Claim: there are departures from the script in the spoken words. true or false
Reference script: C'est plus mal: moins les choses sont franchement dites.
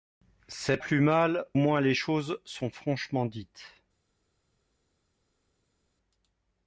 false